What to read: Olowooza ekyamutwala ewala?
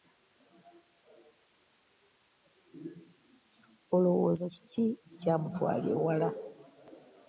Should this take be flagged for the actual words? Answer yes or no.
yes